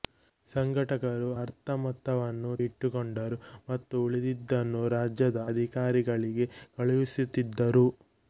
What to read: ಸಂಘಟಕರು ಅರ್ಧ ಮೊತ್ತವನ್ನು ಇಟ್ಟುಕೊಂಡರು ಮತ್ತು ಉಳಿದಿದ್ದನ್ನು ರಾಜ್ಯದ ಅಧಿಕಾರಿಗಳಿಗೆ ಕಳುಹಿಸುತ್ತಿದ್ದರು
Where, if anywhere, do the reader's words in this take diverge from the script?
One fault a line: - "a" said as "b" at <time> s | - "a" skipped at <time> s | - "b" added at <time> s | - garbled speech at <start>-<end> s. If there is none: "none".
none